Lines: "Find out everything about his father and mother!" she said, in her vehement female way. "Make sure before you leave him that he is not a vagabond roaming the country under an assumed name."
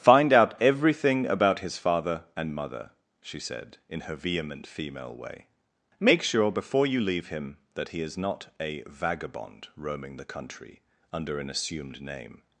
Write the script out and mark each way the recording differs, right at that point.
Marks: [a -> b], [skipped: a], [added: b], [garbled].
"Find out everything about his father and mother!" she said, in her vehement female way. "Make sure before you leave him that he is not a vagabond roaming the country under an assumed name."